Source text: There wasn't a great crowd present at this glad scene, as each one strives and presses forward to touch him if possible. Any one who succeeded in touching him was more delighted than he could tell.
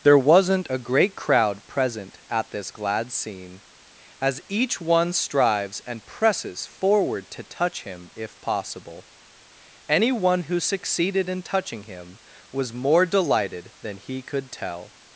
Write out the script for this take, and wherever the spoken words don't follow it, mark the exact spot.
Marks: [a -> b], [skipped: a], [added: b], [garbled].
There wasn't a great crowd present at this glad scene, as each one strives and presses forward to touch him if possible. Any one who succeeded in touching him was more delighted than he could tell.